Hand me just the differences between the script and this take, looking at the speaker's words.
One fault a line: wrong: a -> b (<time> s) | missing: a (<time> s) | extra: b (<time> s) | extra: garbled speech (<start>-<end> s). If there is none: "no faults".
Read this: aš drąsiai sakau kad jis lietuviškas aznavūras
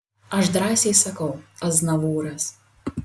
missing: kad jis lietuviškas (1.3 s)